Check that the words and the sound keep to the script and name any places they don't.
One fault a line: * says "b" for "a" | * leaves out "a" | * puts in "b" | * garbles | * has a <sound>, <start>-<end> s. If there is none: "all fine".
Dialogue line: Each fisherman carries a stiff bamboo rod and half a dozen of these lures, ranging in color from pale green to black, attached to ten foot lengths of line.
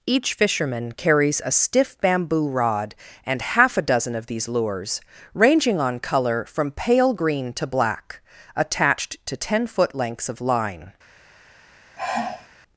* says "on" for "in"
* has a sigh, 12.0-12.5 s